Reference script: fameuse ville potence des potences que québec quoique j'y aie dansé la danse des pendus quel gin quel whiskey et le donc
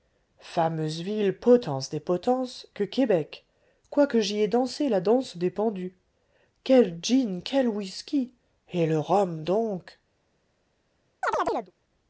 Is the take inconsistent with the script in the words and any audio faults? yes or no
yes